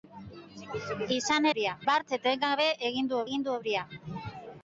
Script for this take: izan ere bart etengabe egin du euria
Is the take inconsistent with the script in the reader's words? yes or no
yes